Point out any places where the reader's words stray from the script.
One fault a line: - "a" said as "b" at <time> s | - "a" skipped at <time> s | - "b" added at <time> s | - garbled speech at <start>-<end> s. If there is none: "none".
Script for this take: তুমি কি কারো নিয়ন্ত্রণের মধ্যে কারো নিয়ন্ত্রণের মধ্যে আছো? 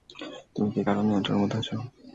- "কারো নিয়ন্ত্রণের মধ্যে" skipped at 1.6 s